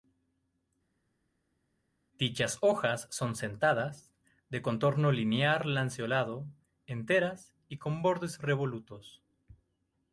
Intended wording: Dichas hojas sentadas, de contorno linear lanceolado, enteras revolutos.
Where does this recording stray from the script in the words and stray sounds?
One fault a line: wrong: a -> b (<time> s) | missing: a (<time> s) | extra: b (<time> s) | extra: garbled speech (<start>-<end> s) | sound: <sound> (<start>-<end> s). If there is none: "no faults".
extra: son (3.1 s)
extra: y con bordes (7.7 s)